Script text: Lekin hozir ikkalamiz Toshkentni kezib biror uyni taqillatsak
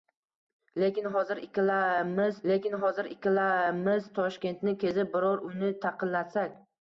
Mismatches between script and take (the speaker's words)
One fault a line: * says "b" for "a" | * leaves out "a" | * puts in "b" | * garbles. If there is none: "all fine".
* puts in "lekin hozir ikkalamiz"